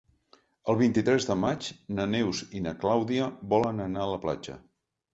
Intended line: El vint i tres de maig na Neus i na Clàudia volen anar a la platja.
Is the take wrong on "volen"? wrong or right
right